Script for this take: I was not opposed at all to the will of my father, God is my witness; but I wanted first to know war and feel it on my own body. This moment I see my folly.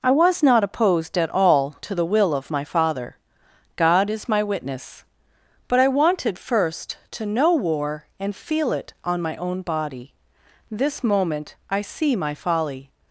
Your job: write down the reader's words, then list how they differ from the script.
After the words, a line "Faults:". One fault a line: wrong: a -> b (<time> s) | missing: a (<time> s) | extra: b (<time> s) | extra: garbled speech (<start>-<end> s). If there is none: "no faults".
I was not opposed at all to the will of my father, God is my witness; but I wanted first to know war and feel it on my own body. This moment I see my folly.
Faults:
no faults